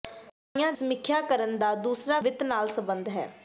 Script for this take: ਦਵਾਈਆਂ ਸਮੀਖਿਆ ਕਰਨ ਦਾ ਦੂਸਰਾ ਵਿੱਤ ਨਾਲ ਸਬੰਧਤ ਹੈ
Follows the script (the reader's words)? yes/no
yes